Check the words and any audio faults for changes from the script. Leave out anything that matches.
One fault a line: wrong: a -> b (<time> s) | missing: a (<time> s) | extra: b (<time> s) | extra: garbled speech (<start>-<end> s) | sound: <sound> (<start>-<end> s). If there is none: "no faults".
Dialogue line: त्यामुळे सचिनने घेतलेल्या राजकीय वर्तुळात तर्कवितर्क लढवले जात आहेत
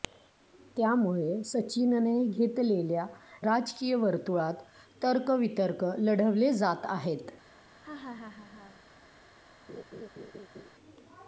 sound: laugh (7.8-8.8 s)
sound: laugh (9.7-10.7 s)